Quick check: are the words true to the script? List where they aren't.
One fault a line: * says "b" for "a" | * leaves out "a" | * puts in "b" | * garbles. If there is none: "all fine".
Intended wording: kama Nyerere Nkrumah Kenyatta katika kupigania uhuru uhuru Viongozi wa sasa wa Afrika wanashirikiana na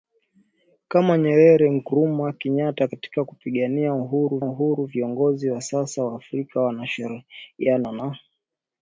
all fine